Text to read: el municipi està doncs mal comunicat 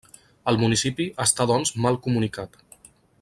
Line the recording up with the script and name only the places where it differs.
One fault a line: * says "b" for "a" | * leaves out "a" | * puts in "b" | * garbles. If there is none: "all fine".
all fine